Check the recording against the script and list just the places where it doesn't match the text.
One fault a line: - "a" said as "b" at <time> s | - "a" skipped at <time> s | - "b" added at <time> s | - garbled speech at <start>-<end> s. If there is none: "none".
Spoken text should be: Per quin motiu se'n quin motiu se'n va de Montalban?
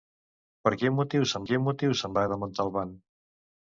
none